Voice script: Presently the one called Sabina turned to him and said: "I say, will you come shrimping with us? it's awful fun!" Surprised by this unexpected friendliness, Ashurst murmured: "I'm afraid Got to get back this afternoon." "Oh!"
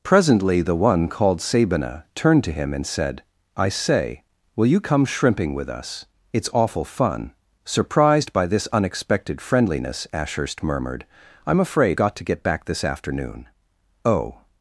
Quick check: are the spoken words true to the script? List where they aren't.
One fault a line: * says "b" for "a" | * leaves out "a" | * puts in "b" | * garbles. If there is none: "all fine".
all fine